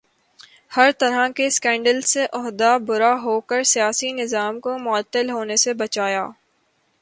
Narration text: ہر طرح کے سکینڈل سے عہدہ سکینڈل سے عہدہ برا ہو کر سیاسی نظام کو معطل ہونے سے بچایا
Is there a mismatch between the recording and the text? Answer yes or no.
yes